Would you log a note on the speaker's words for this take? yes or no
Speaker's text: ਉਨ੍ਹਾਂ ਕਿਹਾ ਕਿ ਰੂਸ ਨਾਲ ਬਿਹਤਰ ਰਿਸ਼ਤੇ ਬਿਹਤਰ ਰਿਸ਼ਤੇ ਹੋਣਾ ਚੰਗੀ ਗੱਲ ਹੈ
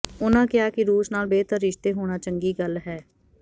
yes